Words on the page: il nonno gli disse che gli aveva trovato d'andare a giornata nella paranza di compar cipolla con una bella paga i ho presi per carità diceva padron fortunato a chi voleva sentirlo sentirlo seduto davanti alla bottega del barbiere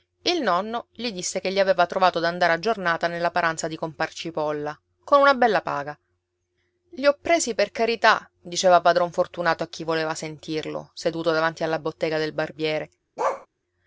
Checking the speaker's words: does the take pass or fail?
fail